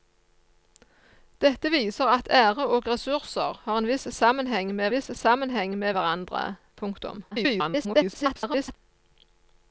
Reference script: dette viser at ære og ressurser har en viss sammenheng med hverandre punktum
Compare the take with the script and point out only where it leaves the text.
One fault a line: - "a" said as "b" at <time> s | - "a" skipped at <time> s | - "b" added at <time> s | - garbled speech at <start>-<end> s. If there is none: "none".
- "viss sammenheng med" added at 4.9 s
- garbled speech at 7.3-8.8 s